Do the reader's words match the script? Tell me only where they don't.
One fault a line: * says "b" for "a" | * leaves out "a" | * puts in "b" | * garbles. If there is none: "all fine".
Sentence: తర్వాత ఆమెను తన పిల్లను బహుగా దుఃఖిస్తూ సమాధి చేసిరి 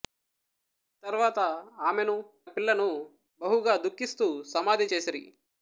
* leaves out "తన"